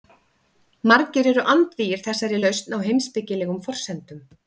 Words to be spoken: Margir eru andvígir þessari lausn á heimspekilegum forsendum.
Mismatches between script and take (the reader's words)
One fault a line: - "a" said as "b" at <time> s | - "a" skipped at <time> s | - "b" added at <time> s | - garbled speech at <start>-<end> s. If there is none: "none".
none